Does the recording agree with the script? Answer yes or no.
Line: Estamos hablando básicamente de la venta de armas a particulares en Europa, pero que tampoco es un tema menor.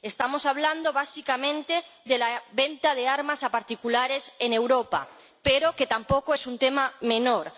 yes